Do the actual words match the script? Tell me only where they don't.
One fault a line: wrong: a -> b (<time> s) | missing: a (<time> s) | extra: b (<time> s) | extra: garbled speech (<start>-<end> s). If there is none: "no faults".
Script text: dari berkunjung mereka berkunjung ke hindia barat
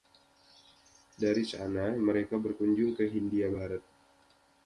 wrong: berkunjung -> sana (1.4 s)